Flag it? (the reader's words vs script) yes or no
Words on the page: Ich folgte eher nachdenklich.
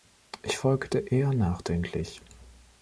no